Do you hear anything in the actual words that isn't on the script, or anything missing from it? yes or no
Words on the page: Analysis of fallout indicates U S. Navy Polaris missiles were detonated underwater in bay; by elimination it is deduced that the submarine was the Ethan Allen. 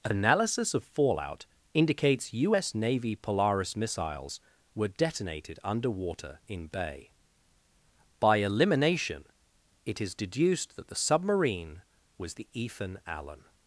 no